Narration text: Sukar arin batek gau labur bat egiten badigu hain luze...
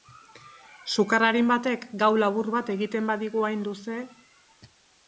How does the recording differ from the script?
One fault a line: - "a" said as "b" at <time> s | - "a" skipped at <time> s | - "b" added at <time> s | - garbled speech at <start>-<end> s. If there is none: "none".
none